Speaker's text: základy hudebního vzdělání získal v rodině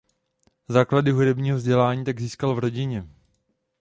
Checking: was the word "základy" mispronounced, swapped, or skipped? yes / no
no